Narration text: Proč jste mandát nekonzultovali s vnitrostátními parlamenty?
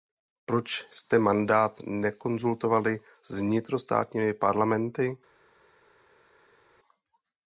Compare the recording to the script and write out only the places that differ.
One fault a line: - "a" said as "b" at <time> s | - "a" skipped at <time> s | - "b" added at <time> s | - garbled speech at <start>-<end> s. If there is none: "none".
none